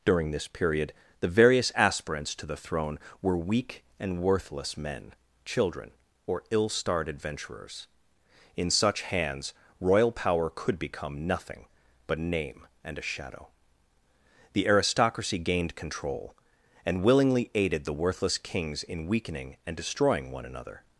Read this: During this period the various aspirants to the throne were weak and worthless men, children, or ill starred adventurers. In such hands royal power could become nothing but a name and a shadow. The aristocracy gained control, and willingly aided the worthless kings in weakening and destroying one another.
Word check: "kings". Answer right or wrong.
right